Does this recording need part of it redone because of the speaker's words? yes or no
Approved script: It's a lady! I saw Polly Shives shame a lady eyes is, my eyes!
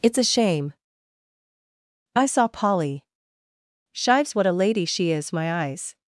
yes